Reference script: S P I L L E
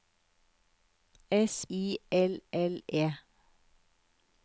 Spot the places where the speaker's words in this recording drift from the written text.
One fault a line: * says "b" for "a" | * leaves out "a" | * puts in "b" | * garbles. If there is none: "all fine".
* leaves out "P"